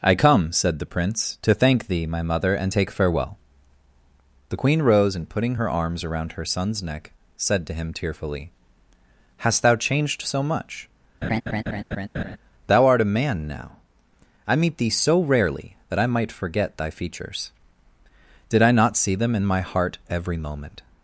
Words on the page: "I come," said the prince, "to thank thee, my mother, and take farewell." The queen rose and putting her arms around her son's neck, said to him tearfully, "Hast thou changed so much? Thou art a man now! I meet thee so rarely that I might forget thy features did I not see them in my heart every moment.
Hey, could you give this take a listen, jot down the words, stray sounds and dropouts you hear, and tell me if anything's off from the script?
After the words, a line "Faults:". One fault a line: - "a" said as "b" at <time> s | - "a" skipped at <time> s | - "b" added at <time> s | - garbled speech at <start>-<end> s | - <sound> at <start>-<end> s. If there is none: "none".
"I come," said the prince, "to thank thee, my mother, and take farewell." The queen rose and putting her arms around her son's neck, said to him tearfully, "Hast thou changed so much? Thou art a man now! I meet thee so rarely that I might forget thy features did I not see them in my heart every moment.
Faults:
- laugh at 11.2-12.4 s